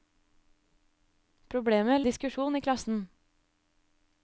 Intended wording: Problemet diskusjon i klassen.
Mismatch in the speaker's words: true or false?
false